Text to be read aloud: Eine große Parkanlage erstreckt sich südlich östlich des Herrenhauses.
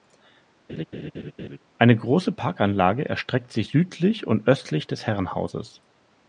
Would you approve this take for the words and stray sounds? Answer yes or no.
no